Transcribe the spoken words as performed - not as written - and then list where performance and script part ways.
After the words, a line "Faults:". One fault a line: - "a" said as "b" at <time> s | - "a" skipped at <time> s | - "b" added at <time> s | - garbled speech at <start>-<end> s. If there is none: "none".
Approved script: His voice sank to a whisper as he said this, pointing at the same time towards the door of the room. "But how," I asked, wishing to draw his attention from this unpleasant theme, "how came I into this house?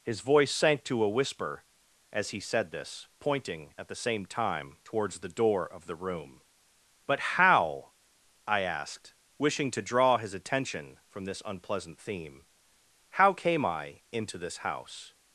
His voice sank to a whisper as he said this, pointing at the same time towards the door of the room. "But how," I asked, wishing to draw his attention from this unpleasant theme, "how came I into this house?
Faults:
none